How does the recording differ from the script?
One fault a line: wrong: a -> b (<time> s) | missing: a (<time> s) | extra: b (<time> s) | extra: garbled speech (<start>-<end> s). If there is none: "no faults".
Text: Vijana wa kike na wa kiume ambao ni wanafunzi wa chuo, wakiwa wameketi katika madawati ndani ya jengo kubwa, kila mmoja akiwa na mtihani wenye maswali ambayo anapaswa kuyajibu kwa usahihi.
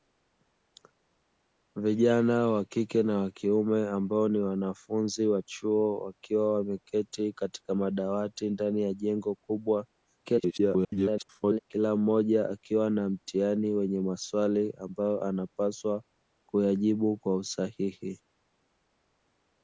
extra: garbled speech (10.2-11.6 s)